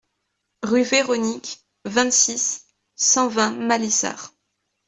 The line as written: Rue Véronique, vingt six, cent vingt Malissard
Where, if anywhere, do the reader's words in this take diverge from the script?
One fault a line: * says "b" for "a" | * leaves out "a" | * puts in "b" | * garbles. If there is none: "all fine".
all fine